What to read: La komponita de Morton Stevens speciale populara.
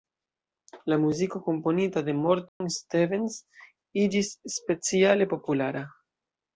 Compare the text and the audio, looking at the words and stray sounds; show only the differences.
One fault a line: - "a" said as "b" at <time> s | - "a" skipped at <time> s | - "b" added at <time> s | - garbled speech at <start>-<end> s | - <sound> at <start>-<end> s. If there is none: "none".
- "muziko" added at 1.0 s
- dropout at 2.5-2.6 s
- "iĝis" added at 4.1 s